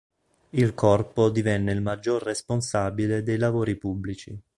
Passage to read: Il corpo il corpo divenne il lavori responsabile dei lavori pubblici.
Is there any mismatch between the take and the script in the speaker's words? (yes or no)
yes